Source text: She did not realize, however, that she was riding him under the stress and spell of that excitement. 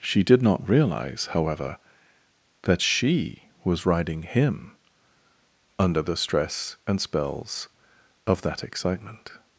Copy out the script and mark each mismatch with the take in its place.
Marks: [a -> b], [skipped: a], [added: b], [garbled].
She did not realize, however, that she was riding him under the stress and [spell -> spells] of that excitement.